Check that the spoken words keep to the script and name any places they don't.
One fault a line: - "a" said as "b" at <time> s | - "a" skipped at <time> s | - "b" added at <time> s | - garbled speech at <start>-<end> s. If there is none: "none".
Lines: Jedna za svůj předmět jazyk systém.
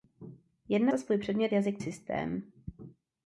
none